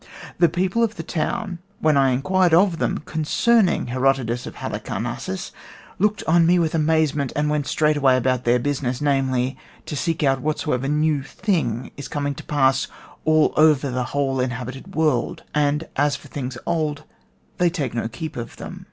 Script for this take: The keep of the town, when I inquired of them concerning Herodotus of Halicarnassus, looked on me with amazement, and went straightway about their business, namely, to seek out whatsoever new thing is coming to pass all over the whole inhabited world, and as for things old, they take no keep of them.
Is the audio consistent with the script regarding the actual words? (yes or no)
no